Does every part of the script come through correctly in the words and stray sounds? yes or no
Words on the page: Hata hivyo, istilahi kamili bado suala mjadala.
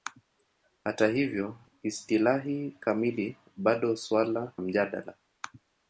yes